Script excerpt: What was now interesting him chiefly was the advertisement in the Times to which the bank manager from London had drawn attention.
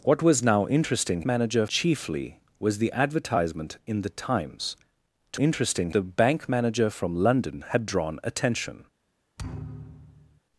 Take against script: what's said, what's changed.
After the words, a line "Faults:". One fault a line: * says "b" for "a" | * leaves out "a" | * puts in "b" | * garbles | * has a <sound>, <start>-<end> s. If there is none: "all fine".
What was now interesting manager chiefly was the advertisement in the Times to interesting the bank manager from London had drawn attention.
Faults:
* says "manager" for "him"
* says "interesting" for "which"
* has a thud, 9.4-10.4 s